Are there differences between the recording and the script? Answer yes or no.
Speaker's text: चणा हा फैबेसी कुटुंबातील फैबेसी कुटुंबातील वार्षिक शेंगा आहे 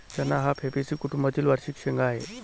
yes